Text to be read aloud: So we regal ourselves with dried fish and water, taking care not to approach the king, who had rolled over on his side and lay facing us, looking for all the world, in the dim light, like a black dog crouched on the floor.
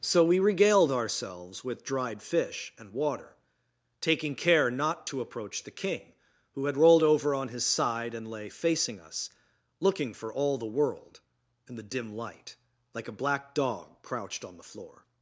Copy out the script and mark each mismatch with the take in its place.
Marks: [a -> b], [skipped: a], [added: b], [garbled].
So we [regal -> regaled] ourselves with dried fish and water, taking care not to approach the king, who had rolled over on his side and lay facing us, looking for all the world, in the dim light, like a black dog crouched on the floor.